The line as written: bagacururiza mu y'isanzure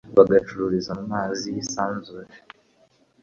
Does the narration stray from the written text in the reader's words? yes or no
yes